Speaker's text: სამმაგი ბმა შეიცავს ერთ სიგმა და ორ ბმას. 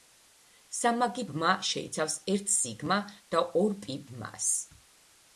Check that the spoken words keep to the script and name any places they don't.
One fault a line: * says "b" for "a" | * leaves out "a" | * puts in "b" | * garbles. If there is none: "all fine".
* puts in "პი"